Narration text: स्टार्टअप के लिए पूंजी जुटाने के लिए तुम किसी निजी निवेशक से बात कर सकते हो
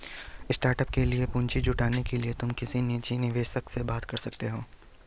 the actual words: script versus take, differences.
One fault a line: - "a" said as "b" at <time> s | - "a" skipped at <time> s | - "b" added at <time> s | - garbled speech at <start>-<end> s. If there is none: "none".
none